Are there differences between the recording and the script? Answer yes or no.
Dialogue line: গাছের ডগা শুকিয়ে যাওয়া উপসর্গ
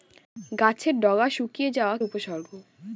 no